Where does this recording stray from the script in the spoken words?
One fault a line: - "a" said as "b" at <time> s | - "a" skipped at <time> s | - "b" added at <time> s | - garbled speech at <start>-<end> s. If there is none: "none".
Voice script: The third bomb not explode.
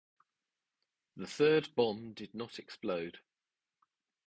- "did" added at 2.1 s